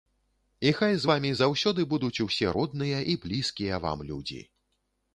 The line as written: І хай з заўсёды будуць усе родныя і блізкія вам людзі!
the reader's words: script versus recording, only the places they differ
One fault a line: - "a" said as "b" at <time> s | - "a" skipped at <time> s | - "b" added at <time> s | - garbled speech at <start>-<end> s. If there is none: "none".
- "вамі" added at 1.1 s